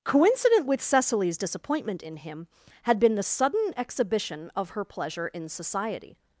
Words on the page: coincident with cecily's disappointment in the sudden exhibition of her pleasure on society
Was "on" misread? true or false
true